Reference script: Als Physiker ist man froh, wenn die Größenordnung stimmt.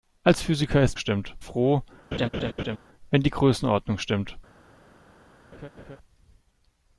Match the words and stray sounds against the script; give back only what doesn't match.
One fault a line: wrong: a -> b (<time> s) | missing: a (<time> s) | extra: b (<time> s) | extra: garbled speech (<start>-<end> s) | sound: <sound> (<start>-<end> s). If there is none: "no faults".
wrong: man -> stimmt (1.0 s)
sound: laugh (2.1-2.8 s)
sound: laugh (5.5-6.0 s)